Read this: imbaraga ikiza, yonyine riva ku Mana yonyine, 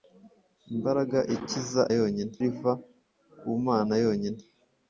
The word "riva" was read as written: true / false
true